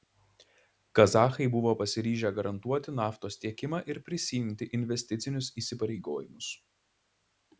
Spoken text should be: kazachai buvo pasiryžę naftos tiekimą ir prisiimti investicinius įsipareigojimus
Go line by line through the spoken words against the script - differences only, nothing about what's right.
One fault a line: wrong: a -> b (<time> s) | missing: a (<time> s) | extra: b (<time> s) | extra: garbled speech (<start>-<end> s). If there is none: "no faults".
extra: garantuoti (2.4 s)